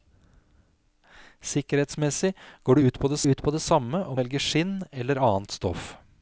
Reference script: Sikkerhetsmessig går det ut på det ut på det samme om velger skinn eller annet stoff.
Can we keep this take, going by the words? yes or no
yes